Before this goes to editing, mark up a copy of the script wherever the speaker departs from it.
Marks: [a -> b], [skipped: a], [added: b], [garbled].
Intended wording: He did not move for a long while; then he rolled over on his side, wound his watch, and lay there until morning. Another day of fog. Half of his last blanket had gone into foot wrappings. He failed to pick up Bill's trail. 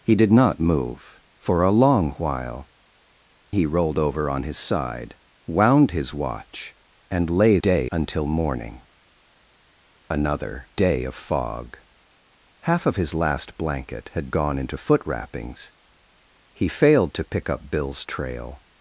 He did not move for a long while; [skipped: then] he rolled over on his side, wound his watch, and lay [there -> day] until morning. Another day of fog. Half of his last blanket had gone into foot wrappings. He failed to pick up Bill's trail.